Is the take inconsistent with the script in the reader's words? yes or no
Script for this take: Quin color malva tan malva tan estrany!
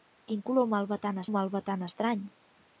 no